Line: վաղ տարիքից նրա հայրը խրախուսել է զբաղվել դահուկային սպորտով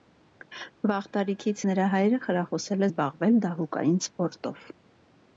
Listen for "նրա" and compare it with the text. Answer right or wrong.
right